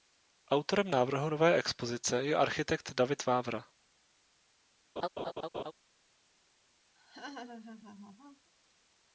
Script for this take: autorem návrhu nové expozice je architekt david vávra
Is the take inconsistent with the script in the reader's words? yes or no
no